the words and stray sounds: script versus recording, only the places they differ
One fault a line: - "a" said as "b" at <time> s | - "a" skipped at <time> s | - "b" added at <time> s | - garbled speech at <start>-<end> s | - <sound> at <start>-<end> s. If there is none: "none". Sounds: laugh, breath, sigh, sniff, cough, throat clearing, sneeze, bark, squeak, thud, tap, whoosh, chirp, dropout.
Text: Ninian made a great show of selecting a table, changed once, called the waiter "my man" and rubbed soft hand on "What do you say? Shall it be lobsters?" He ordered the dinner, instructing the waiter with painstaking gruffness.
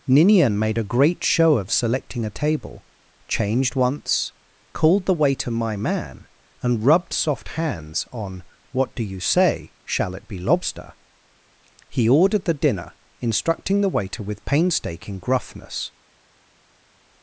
- "hand" said as "hands" at 7.5 s
- "lobsters" said as "lobster" at 10.4 s